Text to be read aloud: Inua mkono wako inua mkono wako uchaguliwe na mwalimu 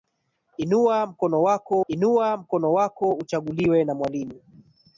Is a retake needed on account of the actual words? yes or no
no